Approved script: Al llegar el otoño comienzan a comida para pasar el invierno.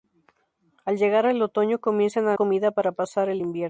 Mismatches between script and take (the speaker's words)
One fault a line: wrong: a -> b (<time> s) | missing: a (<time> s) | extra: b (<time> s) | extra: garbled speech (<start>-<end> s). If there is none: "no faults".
no faults